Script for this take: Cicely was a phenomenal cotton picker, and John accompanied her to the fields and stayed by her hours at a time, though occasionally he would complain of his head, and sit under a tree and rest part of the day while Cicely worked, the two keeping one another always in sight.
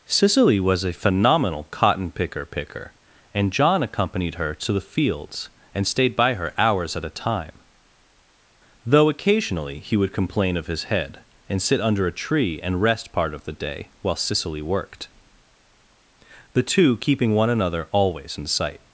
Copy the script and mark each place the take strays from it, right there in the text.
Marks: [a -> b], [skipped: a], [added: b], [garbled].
Cicely was a phenomenal cotton picker, [added: picker] and John accompanied her to the fields and stayed by her hours at a time, though occasionally he would complain of his head, and sit under a tree and rest part of the day while Cicely worked, the two keeping one another always in sight.